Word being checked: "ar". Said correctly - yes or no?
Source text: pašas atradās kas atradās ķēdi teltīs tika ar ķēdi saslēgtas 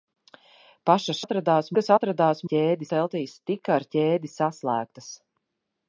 yes